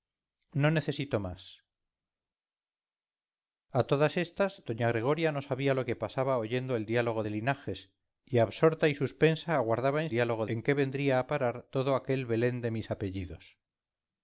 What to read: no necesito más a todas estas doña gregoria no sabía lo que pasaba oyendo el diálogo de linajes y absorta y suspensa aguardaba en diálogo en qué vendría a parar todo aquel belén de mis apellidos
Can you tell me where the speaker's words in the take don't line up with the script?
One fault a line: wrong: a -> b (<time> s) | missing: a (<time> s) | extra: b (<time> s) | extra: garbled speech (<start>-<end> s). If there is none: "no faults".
no faults